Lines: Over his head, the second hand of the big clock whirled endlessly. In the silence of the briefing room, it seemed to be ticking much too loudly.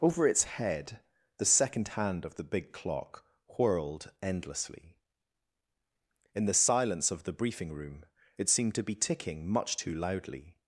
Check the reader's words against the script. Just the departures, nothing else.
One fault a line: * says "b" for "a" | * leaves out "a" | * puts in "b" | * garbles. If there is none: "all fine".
* says "its" for "his"